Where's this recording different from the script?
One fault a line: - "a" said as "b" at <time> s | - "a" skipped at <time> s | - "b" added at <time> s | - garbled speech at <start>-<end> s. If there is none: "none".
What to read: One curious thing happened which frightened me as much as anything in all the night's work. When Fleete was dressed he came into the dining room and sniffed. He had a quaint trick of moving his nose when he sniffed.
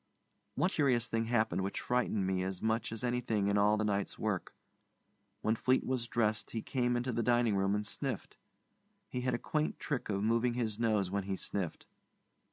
none